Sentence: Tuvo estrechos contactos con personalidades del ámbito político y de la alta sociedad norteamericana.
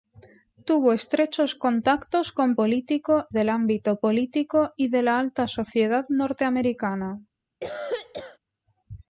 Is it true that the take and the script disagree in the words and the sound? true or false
true